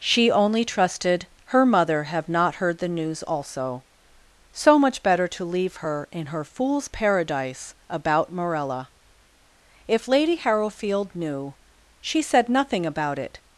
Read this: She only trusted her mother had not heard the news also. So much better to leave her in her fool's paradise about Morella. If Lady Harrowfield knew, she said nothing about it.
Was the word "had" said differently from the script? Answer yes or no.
yes